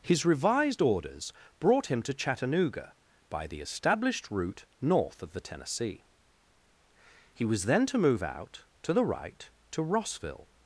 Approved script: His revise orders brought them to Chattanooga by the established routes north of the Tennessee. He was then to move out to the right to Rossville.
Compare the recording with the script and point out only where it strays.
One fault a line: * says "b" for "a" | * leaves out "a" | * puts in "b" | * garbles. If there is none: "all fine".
* says "revised" for "revise"
* says "him" for "them"
* says "route" for "routes"